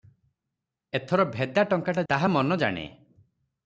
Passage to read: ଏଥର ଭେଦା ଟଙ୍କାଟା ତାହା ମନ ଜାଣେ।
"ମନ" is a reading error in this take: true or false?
false